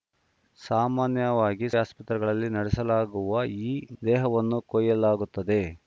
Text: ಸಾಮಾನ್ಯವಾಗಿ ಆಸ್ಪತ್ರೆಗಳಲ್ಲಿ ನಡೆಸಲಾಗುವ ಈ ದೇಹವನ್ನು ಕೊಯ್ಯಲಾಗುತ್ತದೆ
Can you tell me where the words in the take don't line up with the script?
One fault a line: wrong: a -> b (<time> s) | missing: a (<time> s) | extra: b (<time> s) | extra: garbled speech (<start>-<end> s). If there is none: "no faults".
no faults